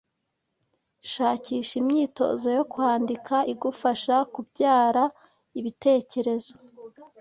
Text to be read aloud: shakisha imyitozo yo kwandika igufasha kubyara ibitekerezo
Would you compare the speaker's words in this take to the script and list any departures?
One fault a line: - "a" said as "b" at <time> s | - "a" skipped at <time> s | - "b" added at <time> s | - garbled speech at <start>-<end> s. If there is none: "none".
none